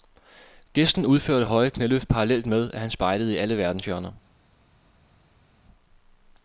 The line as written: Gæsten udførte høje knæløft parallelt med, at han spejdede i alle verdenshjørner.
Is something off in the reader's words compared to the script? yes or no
no